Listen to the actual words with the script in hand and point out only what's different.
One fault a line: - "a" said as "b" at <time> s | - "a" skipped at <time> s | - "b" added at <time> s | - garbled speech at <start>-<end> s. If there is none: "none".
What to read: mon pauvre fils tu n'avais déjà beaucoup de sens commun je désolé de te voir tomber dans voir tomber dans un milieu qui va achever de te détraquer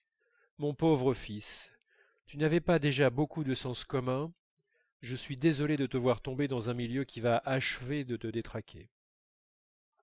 - "pas" added at 2.6 s
- "suis" added at 5.2 s
- "voir tomber dans" skipped at 6.7 s